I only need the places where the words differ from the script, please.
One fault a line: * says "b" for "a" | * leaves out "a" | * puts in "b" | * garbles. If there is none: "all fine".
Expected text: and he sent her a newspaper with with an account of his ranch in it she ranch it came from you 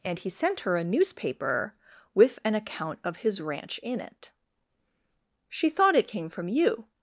* leaves out "with"
* says "thought" for "ranch"